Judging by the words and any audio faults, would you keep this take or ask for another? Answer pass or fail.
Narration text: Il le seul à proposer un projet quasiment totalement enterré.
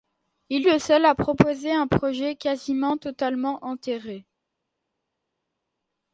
pass